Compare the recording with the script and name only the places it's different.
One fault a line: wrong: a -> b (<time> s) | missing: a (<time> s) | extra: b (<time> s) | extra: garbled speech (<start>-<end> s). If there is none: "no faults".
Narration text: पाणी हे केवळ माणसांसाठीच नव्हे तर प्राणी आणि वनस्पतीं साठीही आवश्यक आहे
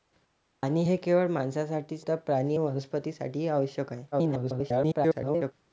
missing: नव्हे (2.0 s)
missing: आणि (2.6 s)
extra: garbled speech (4.1-5.5 s)